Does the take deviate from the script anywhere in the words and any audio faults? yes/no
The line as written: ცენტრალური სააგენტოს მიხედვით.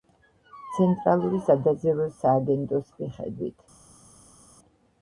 yes